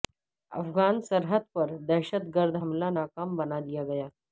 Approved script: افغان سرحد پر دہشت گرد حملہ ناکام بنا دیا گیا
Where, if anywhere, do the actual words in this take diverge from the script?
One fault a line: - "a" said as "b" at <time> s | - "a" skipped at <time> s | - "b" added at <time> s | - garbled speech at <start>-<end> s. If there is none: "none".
none